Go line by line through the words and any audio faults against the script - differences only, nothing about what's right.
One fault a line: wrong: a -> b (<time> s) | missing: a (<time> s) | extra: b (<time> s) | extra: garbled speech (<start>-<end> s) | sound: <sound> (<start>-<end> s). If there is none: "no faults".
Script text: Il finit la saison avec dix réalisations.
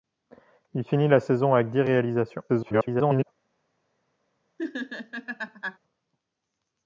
extra: garbled speech (2.5-3.2 s)
sound: laugh (4.6-5.8 s)